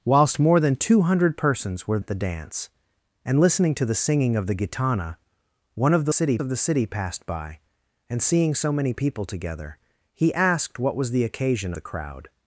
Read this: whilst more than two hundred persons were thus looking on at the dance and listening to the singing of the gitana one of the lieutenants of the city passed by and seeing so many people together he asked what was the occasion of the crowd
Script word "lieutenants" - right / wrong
wrong